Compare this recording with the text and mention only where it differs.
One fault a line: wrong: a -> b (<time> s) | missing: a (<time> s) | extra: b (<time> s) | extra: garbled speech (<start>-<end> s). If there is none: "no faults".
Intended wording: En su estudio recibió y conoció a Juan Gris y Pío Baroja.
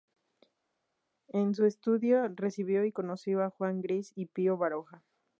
no faults